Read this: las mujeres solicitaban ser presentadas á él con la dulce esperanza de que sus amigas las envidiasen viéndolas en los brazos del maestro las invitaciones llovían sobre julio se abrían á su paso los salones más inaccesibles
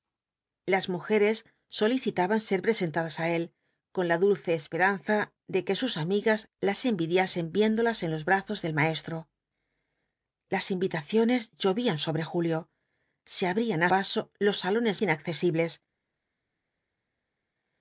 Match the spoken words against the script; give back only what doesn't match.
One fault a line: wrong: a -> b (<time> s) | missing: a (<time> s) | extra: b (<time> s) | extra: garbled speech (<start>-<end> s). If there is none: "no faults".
missing: su (13.9 s)
missing: más (15.0 s)